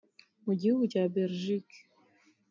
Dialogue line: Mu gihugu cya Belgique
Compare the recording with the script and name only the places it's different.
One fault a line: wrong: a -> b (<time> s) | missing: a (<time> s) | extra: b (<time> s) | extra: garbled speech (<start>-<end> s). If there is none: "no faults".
no faults